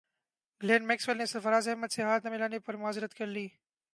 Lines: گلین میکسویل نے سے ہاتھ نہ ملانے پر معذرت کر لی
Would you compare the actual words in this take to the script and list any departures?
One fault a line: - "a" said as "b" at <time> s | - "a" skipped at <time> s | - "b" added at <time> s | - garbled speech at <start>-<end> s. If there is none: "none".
- "سرفراز احمد" added at 1.2 s